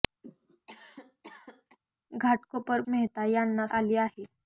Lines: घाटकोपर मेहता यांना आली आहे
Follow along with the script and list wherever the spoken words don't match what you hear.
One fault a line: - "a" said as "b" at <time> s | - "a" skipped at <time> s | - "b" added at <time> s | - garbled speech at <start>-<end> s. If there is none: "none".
none